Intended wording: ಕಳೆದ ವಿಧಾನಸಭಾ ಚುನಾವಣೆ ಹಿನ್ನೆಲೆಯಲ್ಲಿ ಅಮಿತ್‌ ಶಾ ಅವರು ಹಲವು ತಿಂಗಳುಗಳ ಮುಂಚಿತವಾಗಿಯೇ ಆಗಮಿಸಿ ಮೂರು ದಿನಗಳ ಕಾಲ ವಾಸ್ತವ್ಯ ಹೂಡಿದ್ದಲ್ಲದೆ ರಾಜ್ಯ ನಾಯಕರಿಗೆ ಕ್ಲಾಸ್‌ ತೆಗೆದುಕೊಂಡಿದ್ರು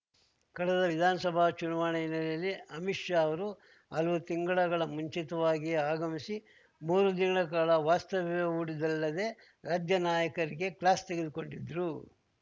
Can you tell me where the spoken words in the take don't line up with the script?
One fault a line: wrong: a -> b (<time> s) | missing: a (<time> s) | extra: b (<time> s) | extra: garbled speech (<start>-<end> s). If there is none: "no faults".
no faults